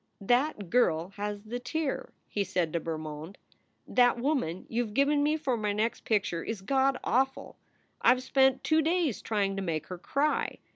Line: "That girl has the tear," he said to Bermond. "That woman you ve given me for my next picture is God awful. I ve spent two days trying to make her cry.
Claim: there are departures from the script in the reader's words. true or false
false